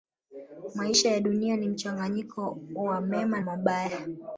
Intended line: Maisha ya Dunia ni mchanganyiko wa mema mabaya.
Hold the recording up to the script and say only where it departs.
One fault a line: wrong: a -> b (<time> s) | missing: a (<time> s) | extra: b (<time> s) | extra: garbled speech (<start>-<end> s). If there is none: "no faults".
no faults